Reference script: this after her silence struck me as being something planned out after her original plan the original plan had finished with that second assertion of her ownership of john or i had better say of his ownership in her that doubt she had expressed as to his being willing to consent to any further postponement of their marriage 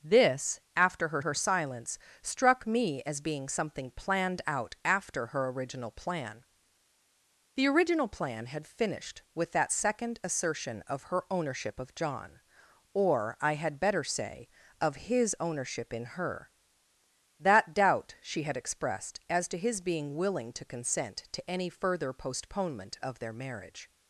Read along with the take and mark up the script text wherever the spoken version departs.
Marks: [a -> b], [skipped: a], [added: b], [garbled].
this after her [added: her] silence struck me as being something planned out after her original plan the original plan had finished with that second assertion of her ownership of john or i had better say of his ownership in her that doubt she had expressed as to his being willing to consent to any further postponement of their marriage